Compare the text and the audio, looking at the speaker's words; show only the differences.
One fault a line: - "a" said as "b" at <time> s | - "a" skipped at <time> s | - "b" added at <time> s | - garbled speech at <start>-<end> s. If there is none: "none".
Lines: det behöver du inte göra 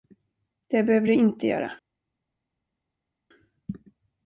none